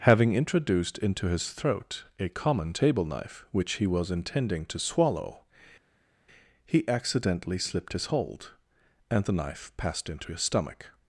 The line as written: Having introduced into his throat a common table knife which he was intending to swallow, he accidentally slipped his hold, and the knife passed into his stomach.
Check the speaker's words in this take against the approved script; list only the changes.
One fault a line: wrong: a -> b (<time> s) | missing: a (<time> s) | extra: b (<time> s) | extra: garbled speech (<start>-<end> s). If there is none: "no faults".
no faults